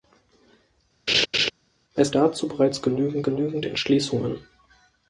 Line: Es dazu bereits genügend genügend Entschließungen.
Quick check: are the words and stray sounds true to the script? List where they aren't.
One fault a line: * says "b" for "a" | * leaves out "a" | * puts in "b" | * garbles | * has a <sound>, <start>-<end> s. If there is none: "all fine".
* has a laugh, 1.1-1.5 s